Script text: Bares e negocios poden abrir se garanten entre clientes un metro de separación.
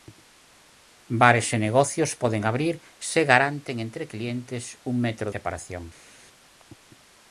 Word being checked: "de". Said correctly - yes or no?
no